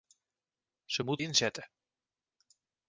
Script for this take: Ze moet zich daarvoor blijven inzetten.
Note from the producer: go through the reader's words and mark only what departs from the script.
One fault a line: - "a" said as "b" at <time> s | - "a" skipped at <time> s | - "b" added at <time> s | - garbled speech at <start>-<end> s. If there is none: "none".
- "zich daarvoor blijven" skipped at 1.2 s